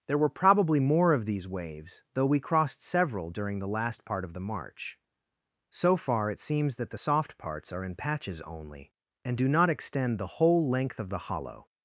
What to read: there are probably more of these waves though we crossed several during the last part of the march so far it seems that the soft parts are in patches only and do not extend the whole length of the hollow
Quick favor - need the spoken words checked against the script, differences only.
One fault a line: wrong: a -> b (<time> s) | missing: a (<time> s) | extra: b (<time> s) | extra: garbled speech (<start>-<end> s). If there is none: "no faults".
wrong: are -> were (0.2 s)